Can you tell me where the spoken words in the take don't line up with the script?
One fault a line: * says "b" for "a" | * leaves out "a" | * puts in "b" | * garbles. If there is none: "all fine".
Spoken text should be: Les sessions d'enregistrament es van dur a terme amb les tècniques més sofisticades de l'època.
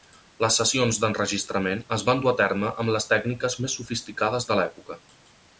all fine